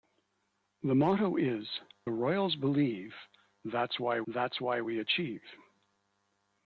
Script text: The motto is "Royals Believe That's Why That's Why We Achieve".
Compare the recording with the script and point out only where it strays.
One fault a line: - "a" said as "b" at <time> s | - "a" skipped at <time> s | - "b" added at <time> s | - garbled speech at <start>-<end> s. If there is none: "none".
none